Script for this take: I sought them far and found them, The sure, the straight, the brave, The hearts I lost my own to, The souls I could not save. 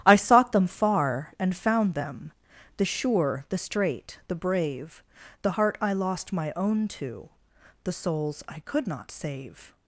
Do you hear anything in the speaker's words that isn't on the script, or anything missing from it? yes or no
yes